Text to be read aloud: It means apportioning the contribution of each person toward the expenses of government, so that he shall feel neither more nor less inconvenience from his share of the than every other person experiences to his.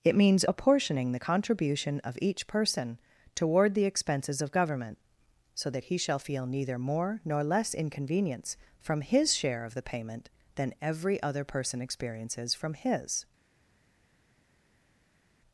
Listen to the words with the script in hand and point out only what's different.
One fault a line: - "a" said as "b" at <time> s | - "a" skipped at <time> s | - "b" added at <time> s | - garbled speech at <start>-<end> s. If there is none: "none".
- "payment" added at 9.8 s
- "to" said as "from" at 12.5 s